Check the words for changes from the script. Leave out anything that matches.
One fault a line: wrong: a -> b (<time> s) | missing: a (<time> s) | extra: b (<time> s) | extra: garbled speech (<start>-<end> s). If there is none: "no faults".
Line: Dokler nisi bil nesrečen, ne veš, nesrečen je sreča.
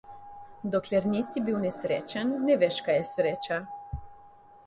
wrong: nesrečen -> kaj (2.9 s)